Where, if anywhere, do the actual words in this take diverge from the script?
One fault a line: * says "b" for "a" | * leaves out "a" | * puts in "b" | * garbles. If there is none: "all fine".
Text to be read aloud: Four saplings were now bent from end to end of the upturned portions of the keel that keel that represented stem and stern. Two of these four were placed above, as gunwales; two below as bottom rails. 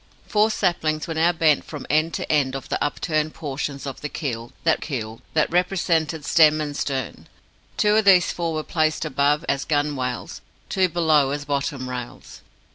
all fine